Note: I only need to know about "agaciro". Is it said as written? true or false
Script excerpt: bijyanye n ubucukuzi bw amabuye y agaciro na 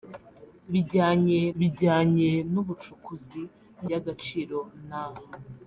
true